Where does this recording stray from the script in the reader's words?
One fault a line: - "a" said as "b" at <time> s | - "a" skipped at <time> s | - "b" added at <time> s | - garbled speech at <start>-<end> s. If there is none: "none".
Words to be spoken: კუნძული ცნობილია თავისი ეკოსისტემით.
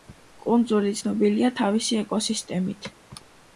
none